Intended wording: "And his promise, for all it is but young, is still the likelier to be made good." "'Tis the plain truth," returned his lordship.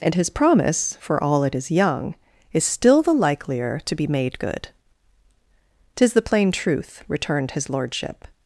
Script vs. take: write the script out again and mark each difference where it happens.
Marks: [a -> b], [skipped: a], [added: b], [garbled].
"And his promise, for all it is [skipped: but] young, is still the likelier to be made good." "'Tis the plain truth," returned his lordship.